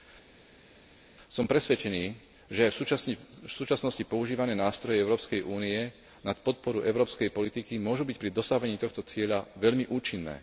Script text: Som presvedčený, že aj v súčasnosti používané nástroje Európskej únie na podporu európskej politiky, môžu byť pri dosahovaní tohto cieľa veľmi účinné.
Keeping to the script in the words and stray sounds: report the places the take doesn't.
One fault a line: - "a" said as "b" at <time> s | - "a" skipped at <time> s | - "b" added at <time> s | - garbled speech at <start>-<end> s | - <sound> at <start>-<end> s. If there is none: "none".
none